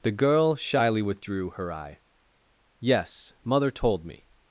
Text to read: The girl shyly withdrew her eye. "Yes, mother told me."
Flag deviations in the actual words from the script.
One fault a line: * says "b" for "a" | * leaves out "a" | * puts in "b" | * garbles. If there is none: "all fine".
all fine